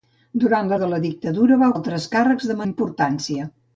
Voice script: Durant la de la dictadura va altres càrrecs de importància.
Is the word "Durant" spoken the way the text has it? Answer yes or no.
yes